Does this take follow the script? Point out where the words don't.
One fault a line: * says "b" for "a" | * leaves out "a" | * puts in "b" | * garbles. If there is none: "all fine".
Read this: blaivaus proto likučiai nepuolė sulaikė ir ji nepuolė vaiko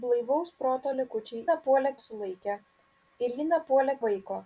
all fine